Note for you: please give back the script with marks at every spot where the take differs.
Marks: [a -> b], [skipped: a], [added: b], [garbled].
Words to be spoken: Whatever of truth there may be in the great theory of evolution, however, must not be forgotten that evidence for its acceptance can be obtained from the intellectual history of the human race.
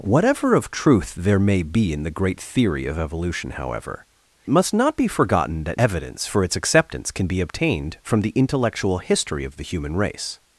Whatever of truth there may be in the great theory of evolution, however, must not be forgotten that evidence for its acceptance can be obtained from the intellectual history of the human race.